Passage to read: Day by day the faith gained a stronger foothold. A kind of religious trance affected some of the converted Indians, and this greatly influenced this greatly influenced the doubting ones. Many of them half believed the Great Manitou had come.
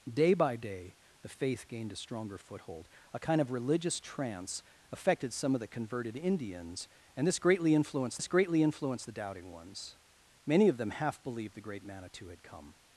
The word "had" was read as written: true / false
true